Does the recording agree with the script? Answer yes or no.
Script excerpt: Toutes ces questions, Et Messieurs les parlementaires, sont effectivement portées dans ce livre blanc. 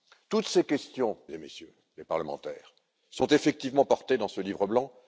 yes